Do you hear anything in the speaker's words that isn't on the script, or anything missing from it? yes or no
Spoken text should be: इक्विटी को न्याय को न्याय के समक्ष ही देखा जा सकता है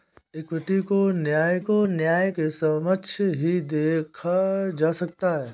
no